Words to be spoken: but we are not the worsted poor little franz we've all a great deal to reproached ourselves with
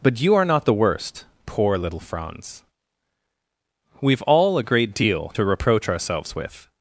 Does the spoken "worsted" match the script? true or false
false